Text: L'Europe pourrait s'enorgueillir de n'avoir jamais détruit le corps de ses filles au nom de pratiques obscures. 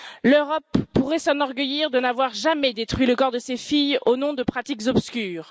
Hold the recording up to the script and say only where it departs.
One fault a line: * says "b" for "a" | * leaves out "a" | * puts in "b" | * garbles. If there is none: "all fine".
all fine